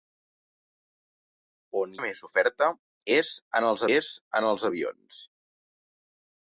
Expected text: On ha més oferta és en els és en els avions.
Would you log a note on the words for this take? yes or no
no